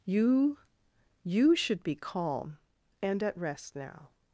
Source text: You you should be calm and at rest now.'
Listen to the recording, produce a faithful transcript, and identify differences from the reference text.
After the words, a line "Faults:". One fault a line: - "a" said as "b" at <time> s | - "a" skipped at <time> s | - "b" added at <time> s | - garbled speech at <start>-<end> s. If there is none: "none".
You you should be calm and at rest now.'
Faults:
none